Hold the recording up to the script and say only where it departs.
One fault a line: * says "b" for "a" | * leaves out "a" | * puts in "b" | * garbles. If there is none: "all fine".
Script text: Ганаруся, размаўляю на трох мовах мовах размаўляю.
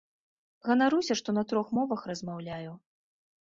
* says "што" for "размаўляю"
* leaves out "мовах"